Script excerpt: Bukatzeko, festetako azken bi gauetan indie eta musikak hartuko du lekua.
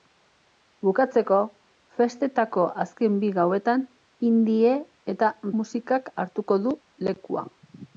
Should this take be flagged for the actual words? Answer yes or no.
no